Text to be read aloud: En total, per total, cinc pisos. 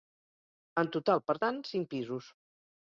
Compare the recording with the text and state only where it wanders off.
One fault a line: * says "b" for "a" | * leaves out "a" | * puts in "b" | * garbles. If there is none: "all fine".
* says "tant" for "total"